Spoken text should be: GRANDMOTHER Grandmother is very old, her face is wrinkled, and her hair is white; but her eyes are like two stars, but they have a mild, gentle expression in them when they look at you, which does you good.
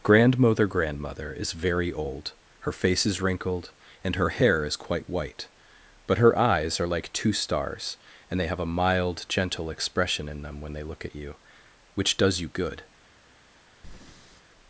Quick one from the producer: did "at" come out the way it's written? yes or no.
yes